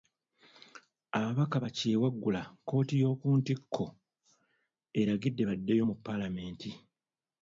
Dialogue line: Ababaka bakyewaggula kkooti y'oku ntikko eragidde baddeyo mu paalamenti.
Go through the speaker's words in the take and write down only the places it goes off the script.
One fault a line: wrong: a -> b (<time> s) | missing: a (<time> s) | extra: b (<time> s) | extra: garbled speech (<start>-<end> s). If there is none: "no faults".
no faults